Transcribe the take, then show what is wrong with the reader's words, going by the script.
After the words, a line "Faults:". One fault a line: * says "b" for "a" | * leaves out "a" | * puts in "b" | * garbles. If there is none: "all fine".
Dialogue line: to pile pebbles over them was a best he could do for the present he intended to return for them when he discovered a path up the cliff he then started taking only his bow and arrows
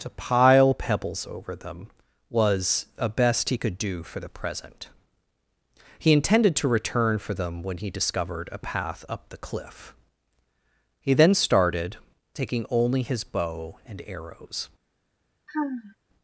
to pile pebbles over them was a best he could do for the present he intended to return for them when he discovered a path up the cliff he then started taking only his bow and arrows
Faults:
all fine